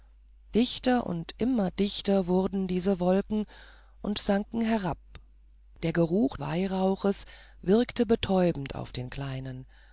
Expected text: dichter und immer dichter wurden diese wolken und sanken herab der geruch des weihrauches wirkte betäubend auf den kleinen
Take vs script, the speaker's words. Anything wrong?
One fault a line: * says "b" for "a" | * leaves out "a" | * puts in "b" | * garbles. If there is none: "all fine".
* leaves out "des"